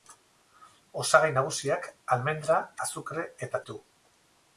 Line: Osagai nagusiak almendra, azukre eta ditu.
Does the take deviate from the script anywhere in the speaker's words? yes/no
no